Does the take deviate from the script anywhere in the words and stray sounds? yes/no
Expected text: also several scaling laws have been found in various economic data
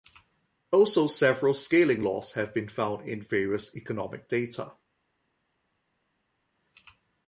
no